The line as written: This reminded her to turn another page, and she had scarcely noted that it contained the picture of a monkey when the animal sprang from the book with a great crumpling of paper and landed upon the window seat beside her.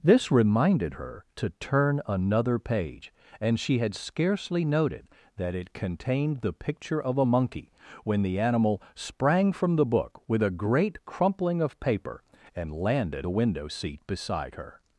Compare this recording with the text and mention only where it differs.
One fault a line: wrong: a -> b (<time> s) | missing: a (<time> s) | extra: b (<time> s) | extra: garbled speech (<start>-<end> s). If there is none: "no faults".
missing: upon (13.3 s)